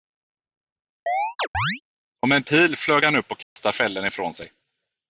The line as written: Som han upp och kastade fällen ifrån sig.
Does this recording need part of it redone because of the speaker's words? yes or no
yes